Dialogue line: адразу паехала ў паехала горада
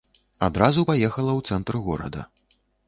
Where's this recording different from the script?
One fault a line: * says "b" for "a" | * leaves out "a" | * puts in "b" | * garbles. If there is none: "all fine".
* says "цэнтр" for "паехала"